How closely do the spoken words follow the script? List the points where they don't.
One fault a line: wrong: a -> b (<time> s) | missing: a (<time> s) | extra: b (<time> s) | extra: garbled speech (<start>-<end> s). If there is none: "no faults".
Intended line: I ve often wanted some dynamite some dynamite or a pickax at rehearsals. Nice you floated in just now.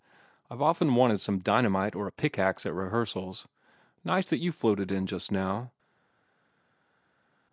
missing: some dynamite (1.9 s)
extra: that (4.3 s)